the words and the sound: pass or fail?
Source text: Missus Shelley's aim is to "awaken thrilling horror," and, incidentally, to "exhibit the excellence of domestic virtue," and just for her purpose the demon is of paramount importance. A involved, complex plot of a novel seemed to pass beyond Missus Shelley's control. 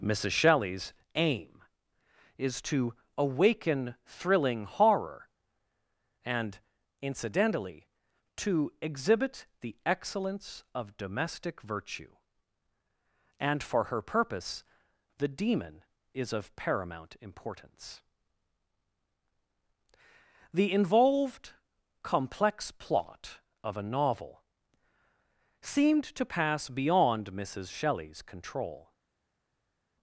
fail